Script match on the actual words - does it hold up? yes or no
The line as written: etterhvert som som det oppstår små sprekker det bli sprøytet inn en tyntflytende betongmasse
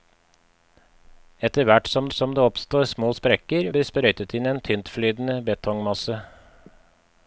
yes